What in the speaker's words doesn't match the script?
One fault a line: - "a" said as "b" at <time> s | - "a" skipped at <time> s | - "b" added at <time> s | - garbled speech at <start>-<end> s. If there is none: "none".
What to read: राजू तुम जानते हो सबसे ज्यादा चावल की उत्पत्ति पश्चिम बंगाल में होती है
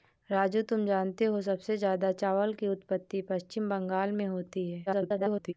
- garbled speech at 4.9-5.5 s